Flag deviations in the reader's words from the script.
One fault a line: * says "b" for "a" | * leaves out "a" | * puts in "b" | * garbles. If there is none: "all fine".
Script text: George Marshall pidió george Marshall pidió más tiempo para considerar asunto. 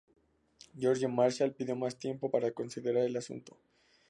* leaves out "george Marshall pidió"
* puts in "el"